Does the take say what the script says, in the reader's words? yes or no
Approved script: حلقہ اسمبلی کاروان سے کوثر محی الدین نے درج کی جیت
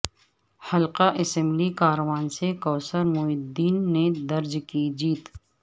yes